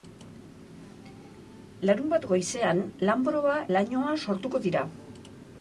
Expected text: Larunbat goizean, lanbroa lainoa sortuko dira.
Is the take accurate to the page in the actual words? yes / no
yes